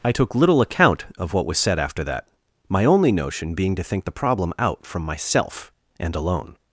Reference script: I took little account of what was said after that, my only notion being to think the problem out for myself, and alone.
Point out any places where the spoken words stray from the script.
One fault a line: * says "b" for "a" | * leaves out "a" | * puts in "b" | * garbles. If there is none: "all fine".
* says "from" for "for"